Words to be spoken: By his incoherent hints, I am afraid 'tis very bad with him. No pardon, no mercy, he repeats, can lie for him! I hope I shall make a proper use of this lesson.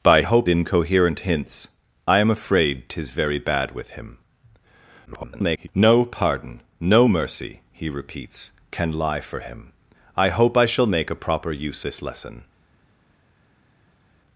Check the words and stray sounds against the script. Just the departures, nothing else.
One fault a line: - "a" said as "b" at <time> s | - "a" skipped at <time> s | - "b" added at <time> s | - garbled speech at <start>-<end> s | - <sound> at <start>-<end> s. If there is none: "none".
- "his" said as "hope" at 0.2 s
- garbled speech at 5.1-5.7 s
- "of" skipped at 11.8 s